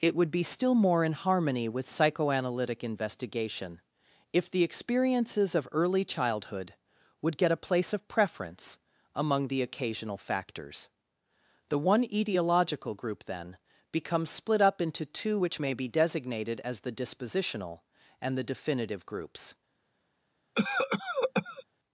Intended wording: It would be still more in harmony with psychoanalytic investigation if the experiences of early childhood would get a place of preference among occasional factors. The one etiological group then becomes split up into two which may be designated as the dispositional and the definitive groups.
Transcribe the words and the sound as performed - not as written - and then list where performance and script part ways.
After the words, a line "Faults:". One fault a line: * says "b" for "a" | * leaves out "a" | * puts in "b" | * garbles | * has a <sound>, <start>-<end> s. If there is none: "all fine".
It would be still more in harmony with psychoanalytic investigation if the experiences of early childhood would get a place of preference among the occasional factors. The one etiological group then becomes split up into two which may be designated as the dispositional and the definitive groups.
Faults:
* puts in "the"
* has a cough, 20.6-21.6 s